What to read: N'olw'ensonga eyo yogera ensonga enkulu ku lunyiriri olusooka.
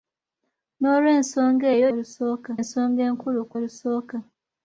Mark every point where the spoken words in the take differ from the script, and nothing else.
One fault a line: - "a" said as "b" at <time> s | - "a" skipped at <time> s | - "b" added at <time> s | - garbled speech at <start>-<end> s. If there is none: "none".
- "yogera" said as "olusooka" at 1.9 s
- "lunyiriri" skipped at 3.6 s